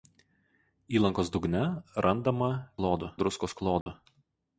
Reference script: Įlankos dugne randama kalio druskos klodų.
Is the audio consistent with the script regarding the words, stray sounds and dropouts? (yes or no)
no